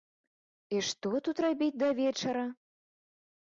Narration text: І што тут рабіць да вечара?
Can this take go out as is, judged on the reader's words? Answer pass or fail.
pass